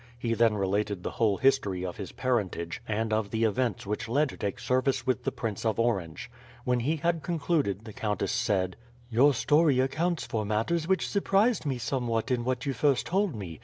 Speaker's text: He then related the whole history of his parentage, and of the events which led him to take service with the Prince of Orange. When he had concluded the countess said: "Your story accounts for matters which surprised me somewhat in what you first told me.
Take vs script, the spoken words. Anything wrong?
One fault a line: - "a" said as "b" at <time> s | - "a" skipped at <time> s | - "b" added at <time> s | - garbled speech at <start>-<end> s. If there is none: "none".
- "him" skipped at 4.3 s